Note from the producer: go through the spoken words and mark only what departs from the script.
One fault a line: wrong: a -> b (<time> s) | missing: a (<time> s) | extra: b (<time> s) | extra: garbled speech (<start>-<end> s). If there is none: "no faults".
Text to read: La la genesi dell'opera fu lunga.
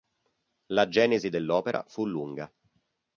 missing: la (0.9 s)